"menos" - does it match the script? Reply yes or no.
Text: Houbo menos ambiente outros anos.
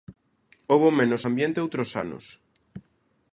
yes